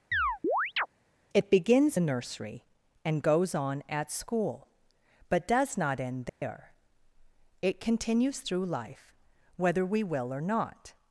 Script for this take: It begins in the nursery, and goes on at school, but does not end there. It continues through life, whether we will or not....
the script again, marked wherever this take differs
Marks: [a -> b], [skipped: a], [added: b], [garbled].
It begins [skipped: in] the nursery, and goes on at school, but does not end there. It continues through life, whether we will or not....